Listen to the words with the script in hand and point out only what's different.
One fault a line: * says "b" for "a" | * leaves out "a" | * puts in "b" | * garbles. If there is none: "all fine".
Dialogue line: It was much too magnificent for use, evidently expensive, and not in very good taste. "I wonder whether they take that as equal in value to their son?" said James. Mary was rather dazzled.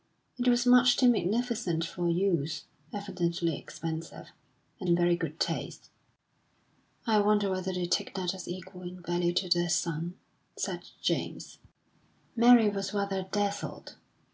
* leaves out "not"